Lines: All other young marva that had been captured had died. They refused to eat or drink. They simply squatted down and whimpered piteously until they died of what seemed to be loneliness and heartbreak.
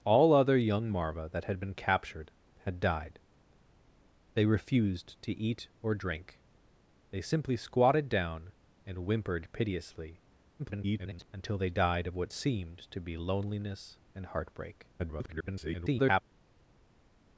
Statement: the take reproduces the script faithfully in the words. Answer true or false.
false